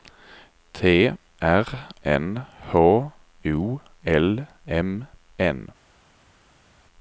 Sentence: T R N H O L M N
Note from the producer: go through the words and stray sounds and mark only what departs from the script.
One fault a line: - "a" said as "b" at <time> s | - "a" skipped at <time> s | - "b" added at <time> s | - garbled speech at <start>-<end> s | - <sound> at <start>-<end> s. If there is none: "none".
none